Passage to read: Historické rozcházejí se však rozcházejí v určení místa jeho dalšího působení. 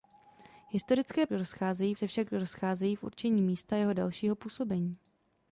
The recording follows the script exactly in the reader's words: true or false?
true